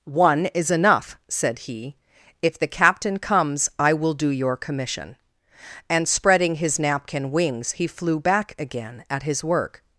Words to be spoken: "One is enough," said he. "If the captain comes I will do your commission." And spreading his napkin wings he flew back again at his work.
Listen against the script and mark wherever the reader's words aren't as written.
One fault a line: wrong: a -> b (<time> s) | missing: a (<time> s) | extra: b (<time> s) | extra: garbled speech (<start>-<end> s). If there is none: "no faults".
no faults